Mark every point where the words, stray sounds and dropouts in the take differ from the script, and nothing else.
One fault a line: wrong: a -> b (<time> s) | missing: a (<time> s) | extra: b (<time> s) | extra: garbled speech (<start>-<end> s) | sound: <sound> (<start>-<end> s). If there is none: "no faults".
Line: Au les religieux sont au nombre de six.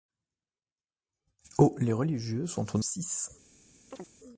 missing: nombre de (2.8 s)
sound: chirp (3.9-4.1 s)